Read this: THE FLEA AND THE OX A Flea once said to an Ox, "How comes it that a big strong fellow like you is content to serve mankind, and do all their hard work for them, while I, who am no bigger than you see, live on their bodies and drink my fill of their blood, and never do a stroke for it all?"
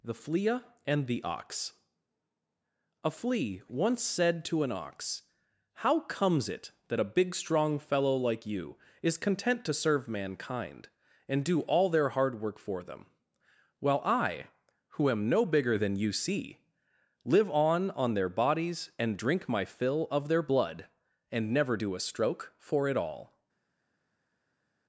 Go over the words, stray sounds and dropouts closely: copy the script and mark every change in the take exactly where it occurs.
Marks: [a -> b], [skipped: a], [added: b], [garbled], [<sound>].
THE FLEA AND THE OX A Flea once said to an Ox, "How comes it that a big strong fellow like you is content to serve mankind, and do all their hard work for them, while I, who am no bigger than you see, live on [added: on] their bodies and drink my fill of their blood, and never do a stroke for it all?"